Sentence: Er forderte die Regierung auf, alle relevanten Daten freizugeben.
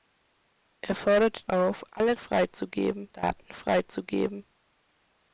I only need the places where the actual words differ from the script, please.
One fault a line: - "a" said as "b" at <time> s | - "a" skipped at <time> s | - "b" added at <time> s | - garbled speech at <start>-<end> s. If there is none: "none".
- "die Regierung" skipped at 1.5 s
- "relevanten" said as "freizugeben" at 2.2 s